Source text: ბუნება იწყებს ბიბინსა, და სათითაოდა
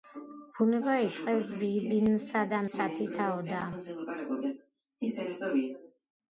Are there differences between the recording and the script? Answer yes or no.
no